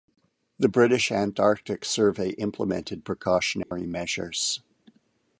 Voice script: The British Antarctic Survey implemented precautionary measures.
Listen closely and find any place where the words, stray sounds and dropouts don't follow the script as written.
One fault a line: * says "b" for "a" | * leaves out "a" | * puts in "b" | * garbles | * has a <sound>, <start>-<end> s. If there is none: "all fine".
* has a dropout, 3.6-3.7 s